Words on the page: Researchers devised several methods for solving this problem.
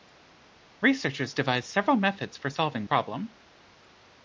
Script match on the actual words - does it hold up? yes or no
no